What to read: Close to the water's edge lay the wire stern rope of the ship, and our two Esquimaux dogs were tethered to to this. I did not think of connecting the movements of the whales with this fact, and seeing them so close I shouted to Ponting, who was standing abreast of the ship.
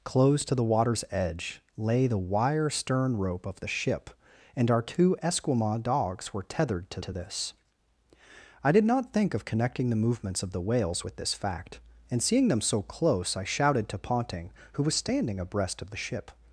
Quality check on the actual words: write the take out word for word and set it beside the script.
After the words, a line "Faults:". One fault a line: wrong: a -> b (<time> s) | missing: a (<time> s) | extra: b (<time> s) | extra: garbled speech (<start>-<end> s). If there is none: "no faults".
Close to the water's edge lay the wire stern rope of the ship, and our two Esquimaux dogs were tethered to to this. I did not think of connecting the movements of the whales with this fact, and seeing them so close I shouted to Ponting, who was standing abreast of the ship.
Faults:
no faults